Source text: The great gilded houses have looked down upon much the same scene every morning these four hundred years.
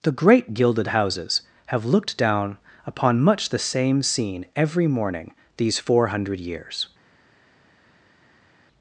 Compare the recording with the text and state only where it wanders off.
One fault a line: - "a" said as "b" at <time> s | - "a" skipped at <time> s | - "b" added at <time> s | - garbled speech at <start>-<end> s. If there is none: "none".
none